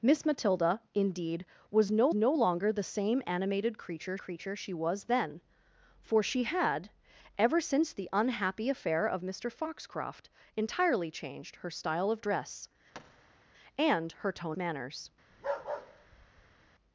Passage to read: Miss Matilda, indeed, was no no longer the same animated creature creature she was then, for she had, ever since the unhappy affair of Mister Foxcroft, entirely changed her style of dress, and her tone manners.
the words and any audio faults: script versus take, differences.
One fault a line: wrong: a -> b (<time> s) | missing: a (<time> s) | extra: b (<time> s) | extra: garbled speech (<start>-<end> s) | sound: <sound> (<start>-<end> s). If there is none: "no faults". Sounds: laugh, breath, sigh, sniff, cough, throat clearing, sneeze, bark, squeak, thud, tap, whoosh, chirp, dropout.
sound: thud (12.9-13.4 s)
sound: bark (15.3-16.7 s)